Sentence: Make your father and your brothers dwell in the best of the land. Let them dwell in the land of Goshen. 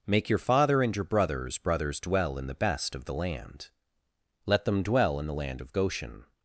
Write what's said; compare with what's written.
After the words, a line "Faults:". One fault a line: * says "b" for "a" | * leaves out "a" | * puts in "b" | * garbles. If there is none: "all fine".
Make your father and your brothers brothers dwell in the best of the land. Let them dwell in the land of Goshen.
Faults:
* puts in "brothers"